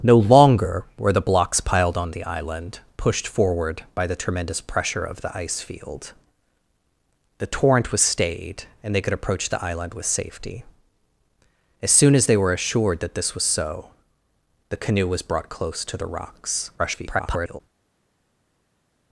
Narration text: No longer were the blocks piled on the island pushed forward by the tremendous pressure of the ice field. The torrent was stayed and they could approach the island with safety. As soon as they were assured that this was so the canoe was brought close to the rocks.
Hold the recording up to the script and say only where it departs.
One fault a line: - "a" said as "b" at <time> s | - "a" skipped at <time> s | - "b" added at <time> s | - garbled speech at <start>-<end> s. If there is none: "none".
- garbled speech at 16.8-17.6 s